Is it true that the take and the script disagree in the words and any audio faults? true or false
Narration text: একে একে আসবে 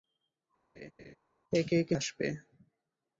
true